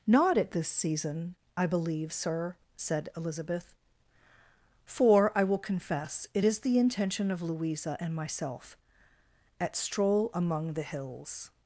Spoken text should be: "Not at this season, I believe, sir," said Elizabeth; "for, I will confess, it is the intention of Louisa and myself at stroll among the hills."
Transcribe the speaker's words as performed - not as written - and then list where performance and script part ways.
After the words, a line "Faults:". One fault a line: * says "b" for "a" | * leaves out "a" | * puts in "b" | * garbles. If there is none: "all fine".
"Not at this season, I believe, sir," said Elizabeth; "for, I will confess, it is the intention of Louisa and myself at stroll among the hills."
Faults:
all fine